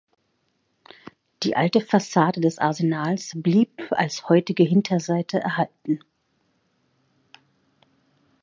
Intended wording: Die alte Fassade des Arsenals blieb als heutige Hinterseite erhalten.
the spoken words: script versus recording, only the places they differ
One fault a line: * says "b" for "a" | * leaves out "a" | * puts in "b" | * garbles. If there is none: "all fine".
all fine